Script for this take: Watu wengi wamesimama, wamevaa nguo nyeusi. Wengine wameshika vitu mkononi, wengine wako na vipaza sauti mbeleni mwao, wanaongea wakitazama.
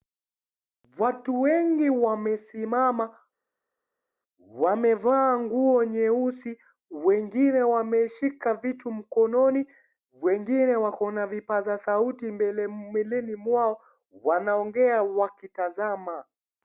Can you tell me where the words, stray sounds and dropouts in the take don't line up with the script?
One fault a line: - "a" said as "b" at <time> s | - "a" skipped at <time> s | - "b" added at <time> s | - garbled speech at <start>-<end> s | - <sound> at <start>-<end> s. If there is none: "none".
none